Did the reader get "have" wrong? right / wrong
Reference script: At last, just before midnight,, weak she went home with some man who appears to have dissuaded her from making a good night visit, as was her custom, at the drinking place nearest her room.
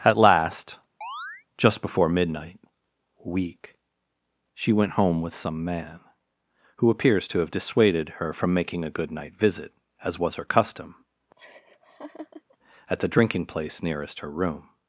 right